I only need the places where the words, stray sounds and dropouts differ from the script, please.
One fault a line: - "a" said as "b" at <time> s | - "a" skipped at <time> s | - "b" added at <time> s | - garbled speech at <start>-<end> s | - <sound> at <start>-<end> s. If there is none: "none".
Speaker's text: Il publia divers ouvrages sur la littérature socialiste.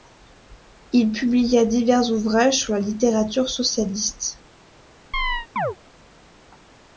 - chirp at 5.1-5.8 s